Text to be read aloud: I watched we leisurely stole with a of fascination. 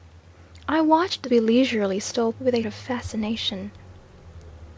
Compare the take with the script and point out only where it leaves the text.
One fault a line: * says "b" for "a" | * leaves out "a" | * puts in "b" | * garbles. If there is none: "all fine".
all fine